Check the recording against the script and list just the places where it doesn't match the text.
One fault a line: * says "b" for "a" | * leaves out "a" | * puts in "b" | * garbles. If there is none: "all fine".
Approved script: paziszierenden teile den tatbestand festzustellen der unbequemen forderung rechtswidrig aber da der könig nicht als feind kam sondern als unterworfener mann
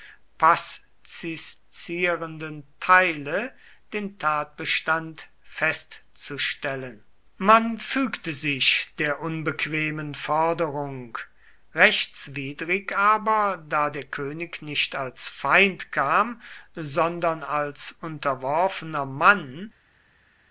* puts in "man fügte sich"